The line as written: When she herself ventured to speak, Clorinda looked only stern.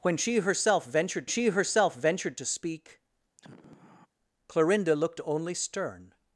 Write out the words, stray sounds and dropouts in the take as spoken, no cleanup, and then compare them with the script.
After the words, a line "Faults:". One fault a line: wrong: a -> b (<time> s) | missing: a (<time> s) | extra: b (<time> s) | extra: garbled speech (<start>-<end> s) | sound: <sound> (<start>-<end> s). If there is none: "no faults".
When she herself ventured she herself ventured to speak, Clorinda looked only stern.
Faults:
extra: she herself ventured (1.3 s)
sound: sigh (3.4-4.1 s)